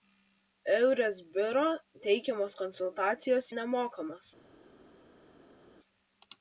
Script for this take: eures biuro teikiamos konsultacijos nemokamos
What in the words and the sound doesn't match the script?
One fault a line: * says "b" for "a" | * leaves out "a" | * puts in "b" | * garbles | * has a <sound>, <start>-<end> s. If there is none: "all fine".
all fine